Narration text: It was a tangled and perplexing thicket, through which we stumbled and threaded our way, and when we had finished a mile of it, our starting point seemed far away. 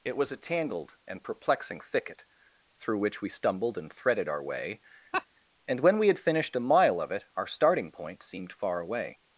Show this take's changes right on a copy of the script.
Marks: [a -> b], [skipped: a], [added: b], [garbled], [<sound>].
It was a tangled and perplexing thicket, through which we stumbled and threaded our way, [laugh] and when we had finished a mile of it, our starting point seemed far away.